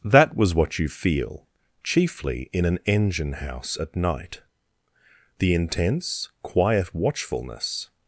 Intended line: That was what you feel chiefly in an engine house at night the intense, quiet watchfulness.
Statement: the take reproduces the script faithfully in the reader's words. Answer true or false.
true